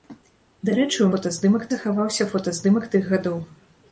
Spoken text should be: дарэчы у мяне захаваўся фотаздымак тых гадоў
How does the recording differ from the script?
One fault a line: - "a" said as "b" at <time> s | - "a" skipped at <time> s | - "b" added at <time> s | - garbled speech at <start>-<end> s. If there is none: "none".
- "мяне" said as "фотаздымак" at 1.1 s